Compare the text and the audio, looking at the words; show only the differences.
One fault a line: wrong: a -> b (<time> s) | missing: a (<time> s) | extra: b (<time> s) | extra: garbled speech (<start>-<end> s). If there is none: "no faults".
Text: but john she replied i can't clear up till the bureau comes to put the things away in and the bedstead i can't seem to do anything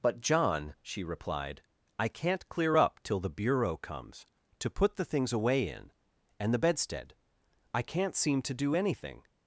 no faults